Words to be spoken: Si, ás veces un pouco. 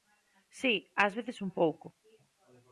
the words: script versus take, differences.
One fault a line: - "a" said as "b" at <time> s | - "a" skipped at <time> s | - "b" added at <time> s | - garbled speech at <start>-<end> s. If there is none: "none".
none